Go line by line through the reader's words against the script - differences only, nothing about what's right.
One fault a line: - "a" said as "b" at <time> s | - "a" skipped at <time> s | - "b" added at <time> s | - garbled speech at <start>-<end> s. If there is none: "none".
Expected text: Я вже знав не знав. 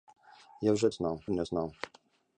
none